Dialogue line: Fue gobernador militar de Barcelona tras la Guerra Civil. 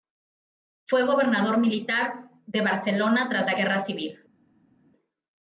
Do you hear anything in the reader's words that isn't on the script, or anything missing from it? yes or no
no